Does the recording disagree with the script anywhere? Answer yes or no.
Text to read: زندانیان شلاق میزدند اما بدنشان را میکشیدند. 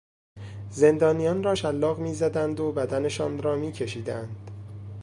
yes